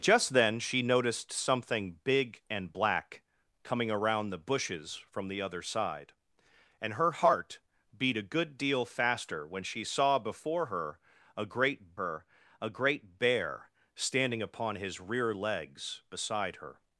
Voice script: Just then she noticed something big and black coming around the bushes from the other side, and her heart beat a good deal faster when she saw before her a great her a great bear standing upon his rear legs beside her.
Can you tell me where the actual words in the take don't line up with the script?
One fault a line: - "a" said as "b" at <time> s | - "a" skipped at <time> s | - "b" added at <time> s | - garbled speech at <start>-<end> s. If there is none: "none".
none